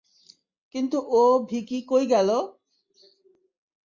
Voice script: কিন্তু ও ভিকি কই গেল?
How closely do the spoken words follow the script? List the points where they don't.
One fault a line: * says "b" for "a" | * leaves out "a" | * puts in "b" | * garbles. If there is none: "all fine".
all fine